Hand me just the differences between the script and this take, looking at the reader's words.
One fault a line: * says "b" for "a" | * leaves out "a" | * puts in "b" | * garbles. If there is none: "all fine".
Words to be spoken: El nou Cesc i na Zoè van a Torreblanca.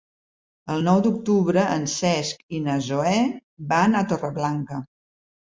* puts in "d'octubre en"